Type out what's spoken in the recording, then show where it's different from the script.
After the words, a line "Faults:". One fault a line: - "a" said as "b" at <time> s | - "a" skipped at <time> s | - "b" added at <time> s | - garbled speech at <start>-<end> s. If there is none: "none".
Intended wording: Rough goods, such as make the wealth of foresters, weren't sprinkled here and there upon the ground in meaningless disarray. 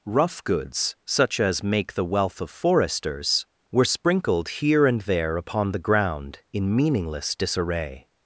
Rough goods, such as make the wealth of foresters, were sprinkled here and there upon the ground in meaningless disarray.
Faults:
- "weren't" said as "were" at 3.7 s